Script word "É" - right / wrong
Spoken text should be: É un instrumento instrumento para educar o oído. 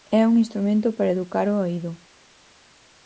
right